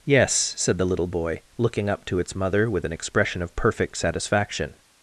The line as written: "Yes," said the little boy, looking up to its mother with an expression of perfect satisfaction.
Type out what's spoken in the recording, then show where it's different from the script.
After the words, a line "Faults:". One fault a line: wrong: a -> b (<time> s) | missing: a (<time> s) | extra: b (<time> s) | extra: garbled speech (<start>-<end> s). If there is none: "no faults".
"Yes," said the little boy, looking up to its mother with an expression of perfect satisfaction.
Faults:
no faults